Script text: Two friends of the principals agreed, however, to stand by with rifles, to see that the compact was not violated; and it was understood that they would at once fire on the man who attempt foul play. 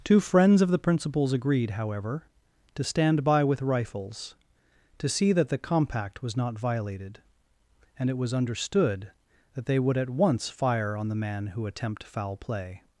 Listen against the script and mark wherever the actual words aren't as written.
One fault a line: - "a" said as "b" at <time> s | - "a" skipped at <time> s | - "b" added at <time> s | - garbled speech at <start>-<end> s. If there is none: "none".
none